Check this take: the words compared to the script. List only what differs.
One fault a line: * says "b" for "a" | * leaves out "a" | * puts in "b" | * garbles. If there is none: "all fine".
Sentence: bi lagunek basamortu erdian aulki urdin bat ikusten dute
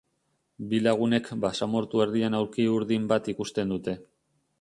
all fine